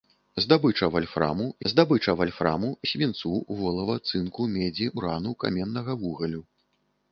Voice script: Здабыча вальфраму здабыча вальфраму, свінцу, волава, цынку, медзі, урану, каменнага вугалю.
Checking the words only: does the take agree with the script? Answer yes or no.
yes